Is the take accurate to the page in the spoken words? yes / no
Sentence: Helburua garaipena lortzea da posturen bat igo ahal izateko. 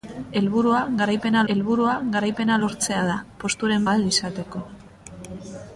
no